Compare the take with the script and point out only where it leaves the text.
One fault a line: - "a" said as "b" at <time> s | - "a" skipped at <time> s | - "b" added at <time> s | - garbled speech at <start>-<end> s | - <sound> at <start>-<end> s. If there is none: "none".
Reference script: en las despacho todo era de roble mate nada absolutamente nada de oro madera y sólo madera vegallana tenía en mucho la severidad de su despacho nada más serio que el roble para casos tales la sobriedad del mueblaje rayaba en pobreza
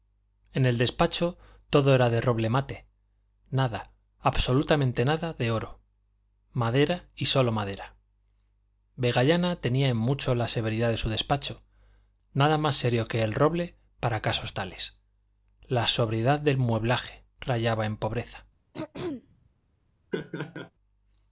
- "las" said as "el" at 0.7 s
- throat clearing at 18.7-19.5 s
- laugh at 20.1-20.7 s